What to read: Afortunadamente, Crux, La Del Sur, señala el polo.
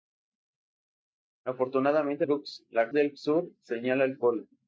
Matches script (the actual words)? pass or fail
pass